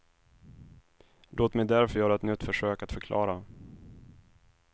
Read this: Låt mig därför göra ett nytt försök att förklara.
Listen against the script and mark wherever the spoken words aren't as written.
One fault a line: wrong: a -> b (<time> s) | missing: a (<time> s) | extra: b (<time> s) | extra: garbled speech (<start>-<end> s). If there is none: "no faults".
no faults